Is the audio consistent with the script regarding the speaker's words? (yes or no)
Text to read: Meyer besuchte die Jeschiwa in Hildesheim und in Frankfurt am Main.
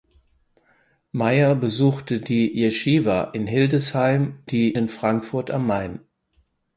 no